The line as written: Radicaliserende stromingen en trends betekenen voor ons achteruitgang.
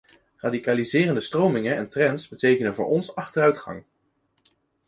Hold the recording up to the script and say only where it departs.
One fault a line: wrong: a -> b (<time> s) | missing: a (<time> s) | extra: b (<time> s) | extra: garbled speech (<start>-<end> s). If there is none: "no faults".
no faults